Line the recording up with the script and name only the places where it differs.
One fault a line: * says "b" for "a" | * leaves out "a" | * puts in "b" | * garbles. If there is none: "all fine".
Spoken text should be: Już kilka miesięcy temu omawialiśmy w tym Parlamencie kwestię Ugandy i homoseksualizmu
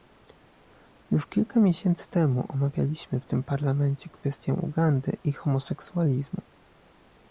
all fine